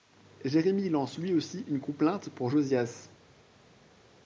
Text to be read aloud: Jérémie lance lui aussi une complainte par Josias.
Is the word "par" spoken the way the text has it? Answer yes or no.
no